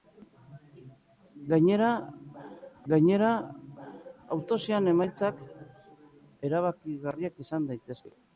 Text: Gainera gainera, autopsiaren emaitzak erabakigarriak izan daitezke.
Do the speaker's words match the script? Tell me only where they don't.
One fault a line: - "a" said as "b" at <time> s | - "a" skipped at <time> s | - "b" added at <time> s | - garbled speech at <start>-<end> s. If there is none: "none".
none